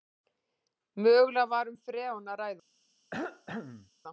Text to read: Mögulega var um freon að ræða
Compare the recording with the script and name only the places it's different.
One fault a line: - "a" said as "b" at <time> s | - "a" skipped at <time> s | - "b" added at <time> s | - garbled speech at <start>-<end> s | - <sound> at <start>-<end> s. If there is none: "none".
- cough at 3.1-3.9 s